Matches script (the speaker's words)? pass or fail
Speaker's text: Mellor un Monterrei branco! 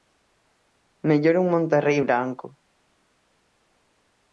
pass